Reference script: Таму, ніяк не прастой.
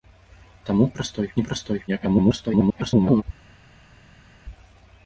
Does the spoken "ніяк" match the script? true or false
false